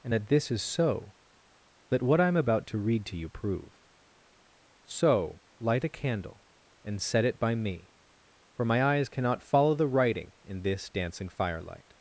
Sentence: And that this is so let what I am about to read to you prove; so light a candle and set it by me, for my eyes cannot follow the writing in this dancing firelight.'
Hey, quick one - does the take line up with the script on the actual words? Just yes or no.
yes